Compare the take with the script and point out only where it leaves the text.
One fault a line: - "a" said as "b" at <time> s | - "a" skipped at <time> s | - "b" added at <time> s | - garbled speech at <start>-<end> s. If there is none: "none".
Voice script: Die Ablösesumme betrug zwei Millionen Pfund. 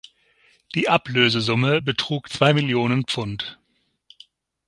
none